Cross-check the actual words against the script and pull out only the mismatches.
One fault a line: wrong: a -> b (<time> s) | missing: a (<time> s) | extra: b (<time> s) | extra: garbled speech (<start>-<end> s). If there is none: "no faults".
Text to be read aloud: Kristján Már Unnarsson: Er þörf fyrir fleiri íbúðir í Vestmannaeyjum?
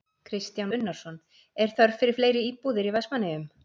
missing: Már (0.7 s)